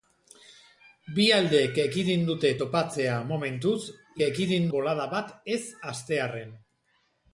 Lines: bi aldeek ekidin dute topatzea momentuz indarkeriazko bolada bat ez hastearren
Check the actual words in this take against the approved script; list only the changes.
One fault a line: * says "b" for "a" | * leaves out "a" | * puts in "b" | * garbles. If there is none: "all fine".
* says "ekidin" for "indarkeriazko"